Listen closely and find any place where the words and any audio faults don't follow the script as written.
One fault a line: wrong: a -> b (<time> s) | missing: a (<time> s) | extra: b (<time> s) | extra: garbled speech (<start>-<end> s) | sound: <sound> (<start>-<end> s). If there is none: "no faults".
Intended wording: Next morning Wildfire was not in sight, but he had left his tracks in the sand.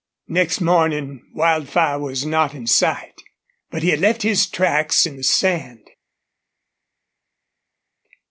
no faults